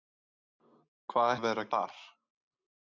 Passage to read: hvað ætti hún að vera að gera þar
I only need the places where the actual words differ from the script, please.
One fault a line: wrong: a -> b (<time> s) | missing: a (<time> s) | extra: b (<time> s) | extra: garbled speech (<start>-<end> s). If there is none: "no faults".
missing: ætti hún (1.4 s)
missing: gera (1.7 s)